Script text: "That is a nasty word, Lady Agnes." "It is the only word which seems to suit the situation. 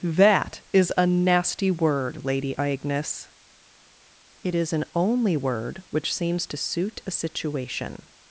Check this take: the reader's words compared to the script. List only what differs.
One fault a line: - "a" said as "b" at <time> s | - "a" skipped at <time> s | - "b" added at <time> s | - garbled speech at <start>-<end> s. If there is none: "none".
- "the" said as "an" at 4.7 s
- "the" said as "a" at 7.0 s